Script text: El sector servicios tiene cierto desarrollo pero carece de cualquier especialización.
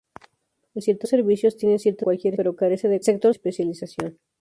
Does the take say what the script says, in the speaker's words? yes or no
no